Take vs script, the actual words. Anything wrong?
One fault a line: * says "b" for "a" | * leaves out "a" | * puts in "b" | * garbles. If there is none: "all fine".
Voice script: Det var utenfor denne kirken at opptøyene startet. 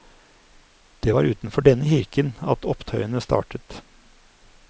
all fine